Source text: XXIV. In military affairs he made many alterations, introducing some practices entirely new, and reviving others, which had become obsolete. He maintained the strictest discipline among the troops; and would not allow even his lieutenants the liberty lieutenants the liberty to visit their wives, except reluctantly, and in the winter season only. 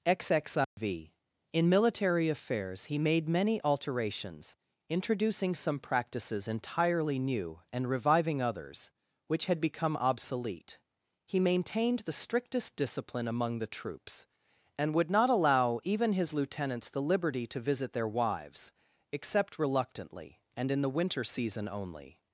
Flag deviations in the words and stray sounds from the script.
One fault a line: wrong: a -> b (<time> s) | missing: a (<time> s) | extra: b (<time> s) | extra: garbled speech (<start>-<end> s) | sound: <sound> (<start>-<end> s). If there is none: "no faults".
sound: dropout (0.6-0.8 s)
missing: lieutenants the liberty (17.4 s)